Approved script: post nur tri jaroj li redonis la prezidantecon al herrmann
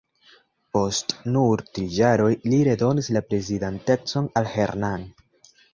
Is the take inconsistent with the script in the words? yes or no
no